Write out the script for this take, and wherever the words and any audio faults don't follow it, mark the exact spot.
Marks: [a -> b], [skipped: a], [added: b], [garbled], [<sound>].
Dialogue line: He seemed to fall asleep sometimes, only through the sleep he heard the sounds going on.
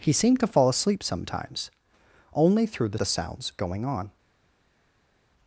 He seemed to fall asleep sometimes, only through the [skipped: sleep he heard] the sounds going on.